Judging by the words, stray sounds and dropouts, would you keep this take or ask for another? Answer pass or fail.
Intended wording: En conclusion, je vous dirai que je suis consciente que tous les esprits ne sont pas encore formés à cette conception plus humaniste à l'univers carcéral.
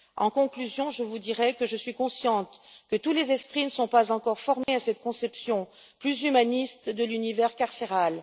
fail